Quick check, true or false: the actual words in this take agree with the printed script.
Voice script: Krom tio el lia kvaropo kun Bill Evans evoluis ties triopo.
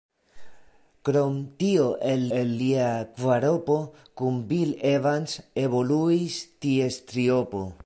false